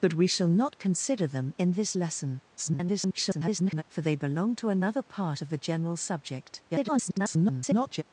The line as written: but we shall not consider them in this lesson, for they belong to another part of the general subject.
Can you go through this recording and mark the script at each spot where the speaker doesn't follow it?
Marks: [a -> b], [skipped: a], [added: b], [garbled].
but we shall not consider them in this lesson, [garbled] for they belong to another part of the general subject. [garbled]